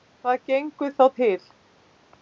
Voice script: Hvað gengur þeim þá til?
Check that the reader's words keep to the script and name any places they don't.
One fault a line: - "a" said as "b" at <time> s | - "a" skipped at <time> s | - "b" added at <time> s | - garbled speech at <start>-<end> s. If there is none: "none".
- "þeim" skipped at 0.9 s